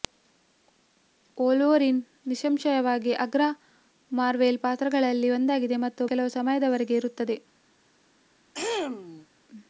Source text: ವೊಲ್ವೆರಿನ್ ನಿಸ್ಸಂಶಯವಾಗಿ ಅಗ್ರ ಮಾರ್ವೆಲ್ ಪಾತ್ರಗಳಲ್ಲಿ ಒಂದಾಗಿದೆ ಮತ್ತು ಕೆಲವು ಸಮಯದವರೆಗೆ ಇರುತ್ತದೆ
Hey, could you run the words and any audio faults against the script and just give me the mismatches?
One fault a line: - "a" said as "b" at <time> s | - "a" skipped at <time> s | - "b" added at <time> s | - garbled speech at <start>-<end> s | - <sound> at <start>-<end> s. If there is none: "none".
- throat clearing at 8.5-9.3 s